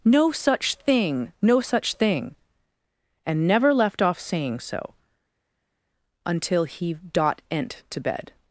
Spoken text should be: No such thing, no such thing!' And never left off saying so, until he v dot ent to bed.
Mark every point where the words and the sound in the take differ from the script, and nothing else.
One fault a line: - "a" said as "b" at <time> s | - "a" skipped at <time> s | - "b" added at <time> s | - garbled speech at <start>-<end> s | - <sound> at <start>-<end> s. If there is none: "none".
- "v" skipped at 6.9 s